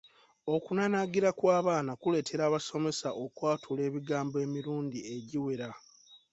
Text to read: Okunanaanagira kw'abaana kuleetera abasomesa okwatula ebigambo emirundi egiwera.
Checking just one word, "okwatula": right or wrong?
right